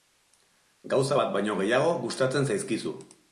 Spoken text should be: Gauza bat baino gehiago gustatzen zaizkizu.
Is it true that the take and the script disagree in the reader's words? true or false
false